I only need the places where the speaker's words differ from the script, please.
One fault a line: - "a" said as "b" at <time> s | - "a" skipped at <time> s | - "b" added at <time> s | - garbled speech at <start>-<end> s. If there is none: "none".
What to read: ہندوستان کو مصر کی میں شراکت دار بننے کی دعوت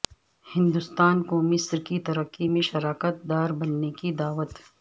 - "ترقی" added at 2.0 s